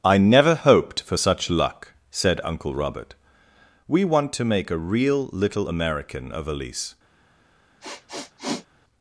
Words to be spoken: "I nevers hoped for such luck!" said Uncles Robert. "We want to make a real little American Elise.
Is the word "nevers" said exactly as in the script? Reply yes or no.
no